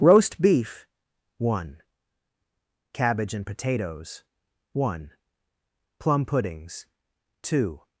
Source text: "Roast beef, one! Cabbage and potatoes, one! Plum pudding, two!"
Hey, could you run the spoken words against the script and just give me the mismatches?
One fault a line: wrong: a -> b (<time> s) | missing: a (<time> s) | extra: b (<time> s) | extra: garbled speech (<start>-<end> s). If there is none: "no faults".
wrong: pudding -> puddings (6.2 s)